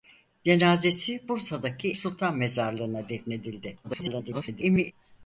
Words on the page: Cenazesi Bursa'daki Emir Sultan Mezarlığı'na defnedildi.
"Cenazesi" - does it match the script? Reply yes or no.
yes